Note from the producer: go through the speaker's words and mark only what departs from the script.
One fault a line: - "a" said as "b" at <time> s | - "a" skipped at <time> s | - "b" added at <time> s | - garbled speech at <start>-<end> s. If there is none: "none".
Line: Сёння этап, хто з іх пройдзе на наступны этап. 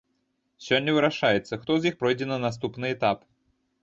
- "этап" said as "вырашаецца" at 0.9 s